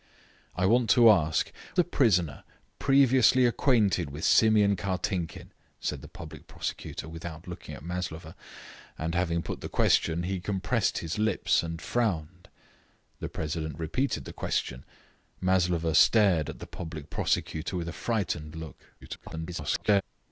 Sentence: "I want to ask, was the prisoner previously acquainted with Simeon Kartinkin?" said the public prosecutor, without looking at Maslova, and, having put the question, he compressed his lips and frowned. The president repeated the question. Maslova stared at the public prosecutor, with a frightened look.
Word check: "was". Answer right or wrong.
wrong